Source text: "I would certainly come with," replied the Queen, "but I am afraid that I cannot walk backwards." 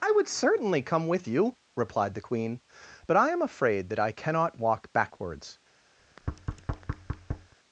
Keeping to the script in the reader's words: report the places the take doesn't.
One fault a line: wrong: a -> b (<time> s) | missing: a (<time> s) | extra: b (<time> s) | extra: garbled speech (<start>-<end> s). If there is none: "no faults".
extra: you (1.3 s)